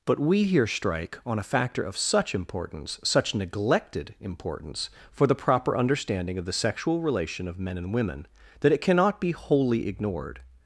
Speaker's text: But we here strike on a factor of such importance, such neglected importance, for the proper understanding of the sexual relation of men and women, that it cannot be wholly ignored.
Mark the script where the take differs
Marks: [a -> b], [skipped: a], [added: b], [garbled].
But we here strike on a factor of such importance, such neglected importance, for the proper understanding of the sexual relation of men and women, that it cannot be wholly ignored.